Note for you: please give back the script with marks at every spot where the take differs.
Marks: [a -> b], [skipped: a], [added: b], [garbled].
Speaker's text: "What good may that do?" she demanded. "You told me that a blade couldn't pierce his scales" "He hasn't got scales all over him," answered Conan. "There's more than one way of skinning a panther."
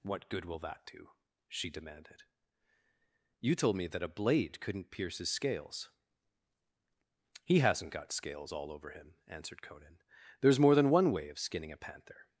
"What good [may -> will] that do?" she demanded. "You told me that a blade couldn't pierce his scales" "He hasn't got scales all over him," answered Conan. "There's more than one way of skinning a panther."